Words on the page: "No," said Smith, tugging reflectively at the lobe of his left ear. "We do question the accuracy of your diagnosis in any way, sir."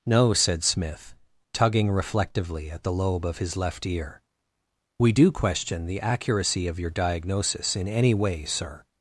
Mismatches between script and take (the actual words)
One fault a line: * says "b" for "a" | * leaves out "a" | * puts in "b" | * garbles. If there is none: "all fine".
all fine